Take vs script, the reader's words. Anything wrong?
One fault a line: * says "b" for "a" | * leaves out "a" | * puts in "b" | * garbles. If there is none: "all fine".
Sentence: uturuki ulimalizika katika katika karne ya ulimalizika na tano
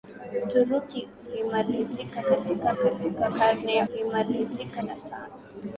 all fine